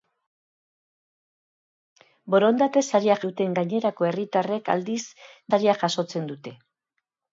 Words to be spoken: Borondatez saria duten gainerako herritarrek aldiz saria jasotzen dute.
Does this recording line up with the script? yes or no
yes